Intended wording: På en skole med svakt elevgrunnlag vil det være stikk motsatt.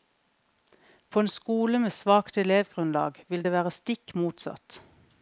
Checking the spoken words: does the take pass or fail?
pass